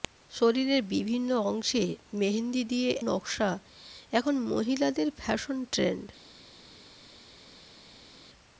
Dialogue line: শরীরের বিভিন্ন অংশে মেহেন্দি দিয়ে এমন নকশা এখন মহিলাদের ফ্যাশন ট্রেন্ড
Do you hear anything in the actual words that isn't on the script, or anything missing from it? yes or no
yes